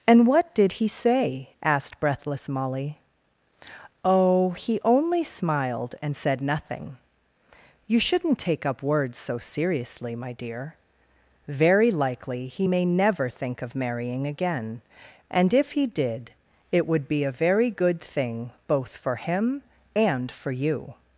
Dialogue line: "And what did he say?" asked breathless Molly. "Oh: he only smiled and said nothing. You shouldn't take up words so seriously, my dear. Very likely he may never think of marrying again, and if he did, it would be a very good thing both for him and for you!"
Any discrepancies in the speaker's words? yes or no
no